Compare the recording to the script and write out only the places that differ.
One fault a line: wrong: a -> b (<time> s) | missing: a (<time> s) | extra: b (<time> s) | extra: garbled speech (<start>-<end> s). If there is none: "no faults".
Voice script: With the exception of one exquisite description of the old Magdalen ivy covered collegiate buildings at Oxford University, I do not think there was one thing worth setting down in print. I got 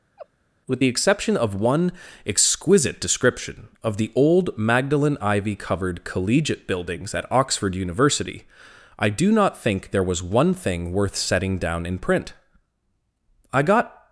no faults